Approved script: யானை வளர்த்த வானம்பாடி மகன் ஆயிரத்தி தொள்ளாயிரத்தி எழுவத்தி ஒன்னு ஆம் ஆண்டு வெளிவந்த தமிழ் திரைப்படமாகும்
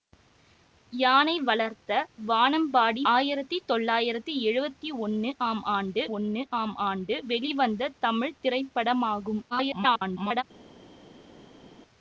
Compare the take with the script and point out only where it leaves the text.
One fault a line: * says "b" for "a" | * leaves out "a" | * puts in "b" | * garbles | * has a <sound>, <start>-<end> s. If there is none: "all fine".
* leaves out "மகன்"
* puts in "ஒன்னு ஆம் ஆண்டு"
* garbles